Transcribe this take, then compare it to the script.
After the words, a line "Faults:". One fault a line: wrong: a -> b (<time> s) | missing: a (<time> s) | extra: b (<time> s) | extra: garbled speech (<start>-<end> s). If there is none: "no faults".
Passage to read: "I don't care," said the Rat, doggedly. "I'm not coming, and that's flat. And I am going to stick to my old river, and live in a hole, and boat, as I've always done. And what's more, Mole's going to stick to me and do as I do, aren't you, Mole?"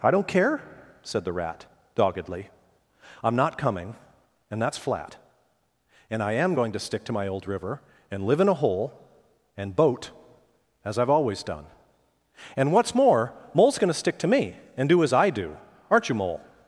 "I don't care," said the Rat, doggedly. "I'm not coming, and that's flat. And I am going to stick to my old river, and live in a hole, and boat, as I've always done. And what's more, Mole's going to stick to me and do as I do, aren't you, Mole?"
Faults:
no faults